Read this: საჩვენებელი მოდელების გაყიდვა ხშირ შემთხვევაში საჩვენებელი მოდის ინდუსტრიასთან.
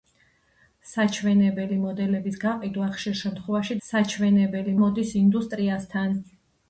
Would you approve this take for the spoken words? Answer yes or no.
yes